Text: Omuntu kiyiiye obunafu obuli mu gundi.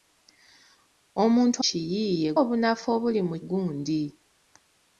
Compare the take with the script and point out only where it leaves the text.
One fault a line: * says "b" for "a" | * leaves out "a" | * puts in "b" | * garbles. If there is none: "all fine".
all fine